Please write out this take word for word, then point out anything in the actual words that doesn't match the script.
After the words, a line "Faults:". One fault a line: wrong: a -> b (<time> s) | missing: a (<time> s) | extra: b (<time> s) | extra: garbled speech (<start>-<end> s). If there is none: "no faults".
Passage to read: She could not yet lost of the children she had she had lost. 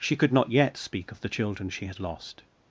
She could not yet speak of the children she had lost.
Faults:
wrong: lost -> speak (0.8 s)
missing: she had (2.0 s)